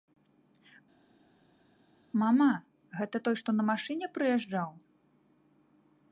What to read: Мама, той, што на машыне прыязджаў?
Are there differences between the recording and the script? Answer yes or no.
yes